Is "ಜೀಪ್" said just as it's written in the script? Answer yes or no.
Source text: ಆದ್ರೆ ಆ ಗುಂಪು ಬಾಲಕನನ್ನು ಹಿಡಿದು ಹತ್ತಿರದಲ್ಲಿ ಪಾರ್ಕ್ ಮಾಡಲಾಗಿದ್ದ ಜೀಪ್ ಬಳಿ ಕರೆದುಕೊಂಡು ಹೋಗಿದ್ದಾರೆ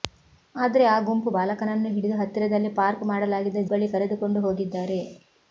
no